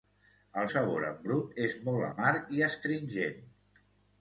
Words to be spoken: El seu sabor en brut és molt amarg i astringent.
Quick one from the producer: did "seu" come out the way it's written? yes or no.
no